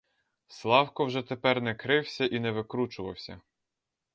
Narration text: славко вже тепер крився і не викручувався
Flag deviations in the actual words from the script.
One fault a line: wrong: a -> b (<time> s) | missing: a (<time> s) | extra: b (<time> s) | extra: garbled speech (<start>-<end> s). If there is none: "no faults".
extra: не (1.6 s)